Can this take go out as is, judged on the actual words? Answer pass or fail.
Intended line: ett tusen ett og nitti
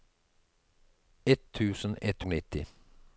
pass